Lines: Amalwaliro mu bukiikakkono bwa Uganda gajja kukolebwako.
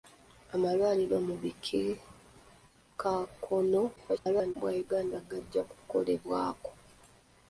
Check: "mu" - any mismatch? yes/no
no